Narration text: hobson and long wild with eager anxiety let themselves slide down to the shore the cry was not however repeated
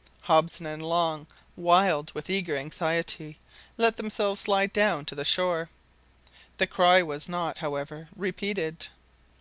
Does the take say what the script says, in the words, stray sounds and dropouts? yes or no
yes